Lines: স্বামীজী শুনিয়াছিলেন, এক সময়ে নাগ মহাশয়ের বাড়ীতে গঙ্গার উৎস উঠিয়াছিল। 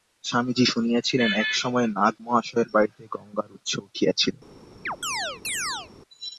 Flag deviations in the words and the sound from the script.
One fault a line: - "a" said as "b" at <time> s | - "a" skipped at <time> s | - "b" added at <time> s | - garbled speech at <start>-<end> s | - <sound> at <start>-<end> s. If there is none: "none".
- chirp at 4.9-5.9 s